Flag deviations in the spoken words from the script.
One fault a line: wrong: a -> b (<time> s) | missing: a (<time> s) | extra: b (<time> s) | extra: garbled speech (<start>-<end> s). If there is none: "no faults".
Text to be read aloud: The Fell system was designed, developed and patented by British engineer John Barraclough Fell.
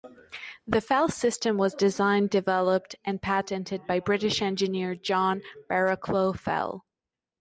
no faults